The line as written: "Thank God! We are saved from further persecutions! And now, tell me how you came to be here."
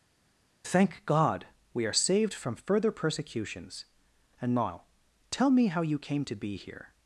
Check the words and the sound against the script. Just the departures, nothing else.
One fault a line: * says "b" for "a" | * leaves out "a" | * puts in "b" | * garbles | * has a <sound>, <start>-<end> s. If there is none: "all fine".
all fine